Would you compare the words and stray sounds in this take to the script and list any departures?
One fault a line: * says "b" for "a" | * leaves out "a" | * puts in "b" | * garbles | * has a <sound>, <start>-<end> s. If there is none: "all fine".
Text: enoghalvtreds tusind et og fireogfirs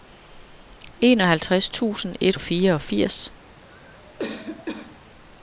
* has a cough, 3.6-5.1 s